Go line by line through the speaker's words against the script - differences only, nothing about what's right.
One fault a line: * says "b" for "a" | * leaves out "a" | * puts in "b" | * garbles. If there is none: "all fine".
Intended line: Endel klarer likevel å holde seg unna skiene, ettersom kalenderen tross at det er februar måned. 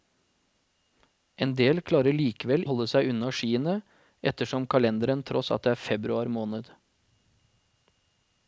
all fine